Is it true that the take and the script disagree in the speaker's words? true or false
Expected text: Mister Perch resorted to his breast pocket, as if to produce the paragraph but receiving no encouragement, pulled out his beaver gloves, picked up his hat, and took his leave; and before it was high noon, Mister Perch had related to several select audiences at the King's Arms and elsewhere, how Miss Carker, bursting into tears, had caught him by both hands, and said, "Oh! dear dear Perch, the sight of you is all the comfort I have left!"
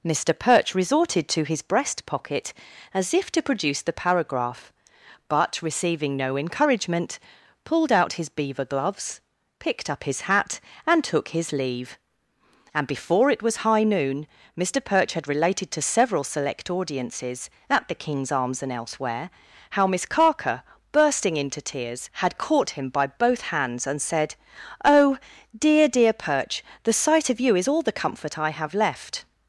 false